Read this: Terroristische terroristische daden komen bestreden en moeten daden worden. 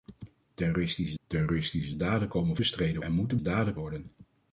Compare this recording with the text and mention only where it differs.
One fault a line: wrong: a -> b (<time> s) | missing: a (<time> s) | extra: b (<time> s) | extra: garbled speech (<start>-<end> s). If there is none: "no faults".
no faults